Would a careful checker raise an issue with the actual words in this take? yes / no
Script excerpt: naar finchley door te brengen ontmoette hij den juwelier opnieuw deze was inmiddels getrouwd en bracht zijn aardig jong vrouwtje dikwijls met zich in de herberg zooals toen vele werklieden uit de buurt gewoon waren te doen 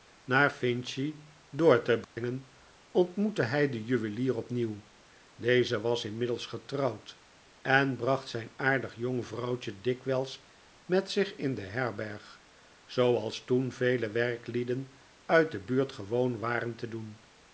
no